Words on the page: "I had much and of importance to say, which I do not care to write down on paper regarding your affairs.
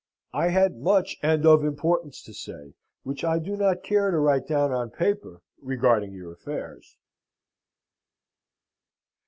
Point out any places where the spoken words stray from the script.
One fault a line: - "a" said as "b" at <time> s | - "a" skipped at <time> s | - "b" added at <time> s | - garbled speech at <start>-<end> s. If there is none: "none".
none